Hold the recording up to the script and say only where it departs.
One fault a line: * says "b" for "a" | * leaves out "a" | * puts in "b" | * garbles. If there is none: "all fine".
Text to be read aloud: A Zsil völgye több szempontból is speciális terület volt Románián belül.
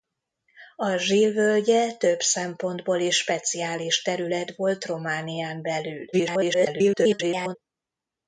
* garbles